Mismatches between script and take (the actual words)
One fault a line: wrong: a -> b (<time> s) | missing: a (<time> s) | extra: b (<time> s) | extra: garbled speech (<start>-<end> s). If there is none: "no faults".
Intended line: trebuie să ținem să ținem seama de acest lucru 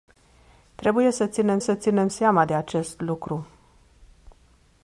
no faults